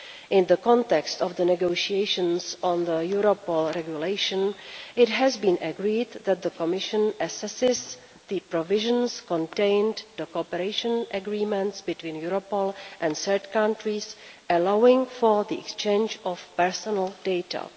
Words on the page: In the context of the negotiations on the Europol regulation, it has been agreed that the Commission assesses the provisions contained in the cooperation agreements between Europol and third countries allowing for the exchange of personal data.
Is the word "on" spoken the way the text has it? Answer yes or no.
yes